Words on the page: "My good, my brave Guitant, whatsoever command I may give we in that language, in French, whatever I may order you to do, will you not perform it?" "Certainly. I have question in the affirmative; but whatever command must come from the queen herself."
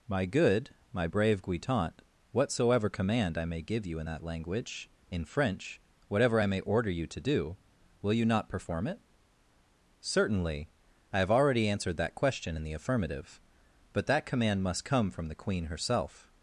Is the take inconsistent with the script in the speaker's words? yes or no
yes